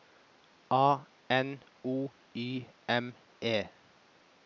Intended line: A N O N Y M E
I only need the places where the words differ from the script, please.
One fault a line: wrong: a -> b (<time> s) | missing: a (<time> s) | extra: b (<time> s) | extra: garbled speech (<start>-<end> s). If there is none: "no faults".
missing: N (2.1 s)